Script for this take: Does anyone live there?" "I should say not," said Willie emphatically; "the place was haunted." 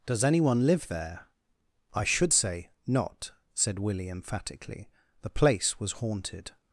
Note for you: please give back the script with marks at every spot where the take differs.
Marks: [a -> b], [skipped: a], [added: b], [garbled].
Does anyone live there?" "I should say not," said Willie emphatically; "the place was haunted."